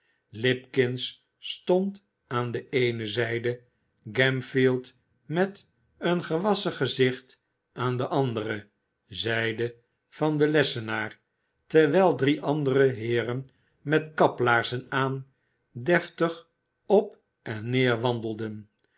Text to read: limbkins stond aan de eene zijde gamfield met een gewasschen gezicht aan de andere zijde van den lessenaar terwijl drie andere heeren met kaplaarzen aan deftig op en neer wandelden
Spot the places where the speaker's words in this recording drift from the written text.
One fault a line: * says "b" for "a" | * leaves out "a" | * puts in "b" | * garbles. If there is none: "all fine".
all fine